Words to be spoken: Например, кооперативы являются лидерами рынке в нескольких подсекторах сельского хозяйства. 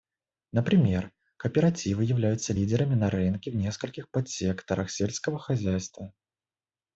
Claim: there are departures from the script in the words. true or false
true